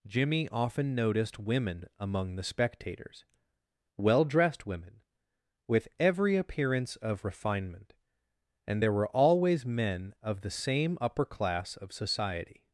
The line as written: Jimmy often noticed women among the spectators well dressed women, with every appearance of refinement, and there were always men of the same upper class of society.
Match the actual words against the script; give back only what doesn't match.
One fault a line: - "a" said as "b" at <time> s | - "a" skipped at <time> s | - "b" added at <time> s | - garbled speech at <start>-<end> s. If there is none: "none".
none